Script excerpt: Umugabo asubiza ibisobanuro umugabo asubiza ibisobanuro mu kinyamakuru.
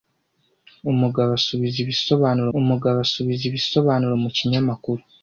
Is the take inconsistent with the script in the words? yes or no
no